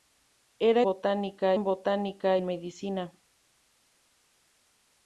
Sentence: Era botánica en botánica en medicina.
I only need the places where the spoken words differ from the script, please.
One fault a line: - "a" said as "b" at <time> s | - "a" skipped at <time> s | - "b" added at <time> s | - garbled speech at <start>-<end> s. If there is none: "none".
none